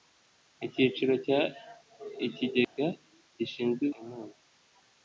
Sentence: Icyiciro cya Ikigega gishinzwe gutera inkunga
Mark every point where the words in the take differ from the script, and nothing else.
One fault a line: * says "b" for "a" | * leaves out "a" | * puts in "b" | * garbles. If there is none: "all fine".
* leaves out "gutera"